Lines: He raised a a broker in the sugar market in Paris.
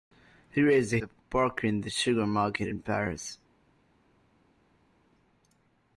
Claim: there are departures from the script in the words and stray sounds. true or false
false